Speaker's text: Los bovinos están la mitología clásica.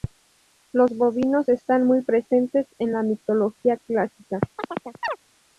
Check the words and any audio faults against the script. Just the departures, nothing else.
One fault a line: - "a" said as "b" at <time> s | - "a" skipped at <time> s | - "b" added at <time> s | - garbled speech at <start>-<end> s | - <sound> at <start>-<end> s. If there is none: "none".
- "muy presentes en" added at 1.8 s
- chirp at 4.6-5.2 s